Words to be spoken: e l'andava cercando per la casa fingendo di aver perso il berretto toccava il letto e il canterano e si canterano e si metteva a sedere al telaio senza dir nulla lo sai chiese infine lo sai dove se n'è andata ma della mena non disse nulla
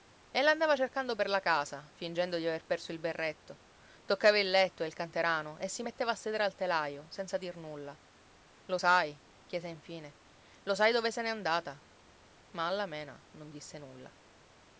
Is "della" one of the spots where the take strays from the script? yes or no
yes